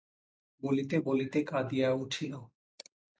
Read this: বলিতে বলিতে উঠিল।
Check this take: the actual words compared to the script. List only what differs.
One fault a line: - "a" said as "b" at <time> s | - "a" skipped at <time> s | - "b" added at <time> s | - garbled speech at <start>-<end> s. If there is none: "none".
- "কাঁদিয়া" added at 1.4 s